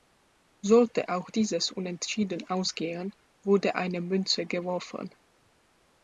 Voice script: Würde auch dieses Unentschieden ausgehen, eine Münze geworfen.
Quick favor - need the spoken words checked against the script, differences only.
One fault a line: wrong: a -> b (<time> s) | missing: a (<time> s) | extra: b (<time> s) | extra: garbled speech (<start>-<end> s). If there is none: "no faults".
wrong: Würde -> Sollte (0.7 s)
extra: wurde (3.4 s)